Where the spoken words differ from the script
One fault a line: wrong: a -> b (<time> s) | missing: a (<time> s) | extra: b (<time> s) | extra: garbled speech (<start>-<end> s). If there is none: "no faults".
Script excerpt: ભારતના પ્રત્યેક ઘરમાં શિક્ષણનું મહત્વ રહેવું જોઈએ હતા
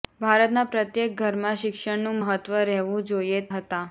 no faults